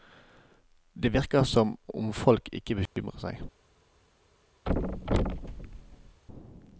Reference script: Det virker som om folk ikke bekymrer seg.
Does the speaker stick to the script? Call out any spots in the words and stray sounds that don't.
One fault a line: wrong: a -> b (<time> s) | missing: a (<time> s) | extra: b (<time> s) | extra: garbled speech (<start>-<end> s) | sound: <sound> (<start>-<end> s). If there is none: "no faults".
sound: dropout (2.9-3.0 s)
sound: thud (4.7-6.2 s)